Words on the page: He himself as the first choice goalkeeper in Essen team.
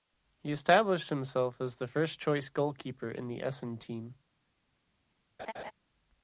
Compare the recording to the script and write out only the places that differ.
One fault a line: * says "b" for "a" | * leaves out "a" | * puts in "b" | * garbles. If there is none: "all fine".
* puts in "established"
* puts in "the"